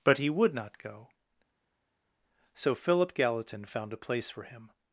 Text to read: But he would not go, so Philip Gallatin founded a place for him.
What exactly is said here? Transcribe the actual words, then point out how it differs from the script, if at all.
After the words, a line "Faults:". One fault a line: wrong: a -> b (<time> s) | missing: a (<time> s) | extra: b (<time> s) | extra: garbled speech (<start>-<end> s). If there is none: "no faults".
But he would not go, so Philip Gallatin found a place for him.
Faults:
wrong: founded -> found (3.7 s)